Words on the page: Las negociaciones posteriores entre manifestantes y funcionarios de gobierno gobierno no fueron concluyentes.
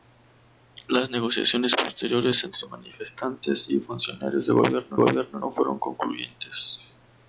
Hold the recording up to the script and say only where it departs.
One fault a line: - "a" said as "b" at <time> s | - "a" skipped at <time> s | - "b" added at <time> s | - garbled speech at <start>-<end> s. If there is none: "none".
none